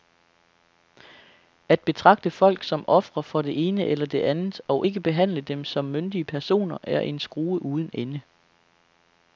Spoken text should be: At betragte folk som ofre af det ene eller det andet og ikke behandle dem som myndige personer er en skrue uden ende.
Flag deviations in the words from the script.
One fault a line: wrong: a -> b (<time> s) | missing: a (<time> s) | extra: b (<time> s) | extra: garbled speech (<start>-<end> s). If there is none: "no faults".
wrong: af -> for (3.2 s)